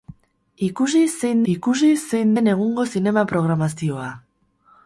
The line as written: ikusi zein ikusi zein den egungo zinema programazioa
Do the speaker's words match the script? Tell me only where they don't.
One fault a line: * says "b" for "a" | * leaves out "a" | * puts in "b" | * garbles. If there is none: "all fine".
all fine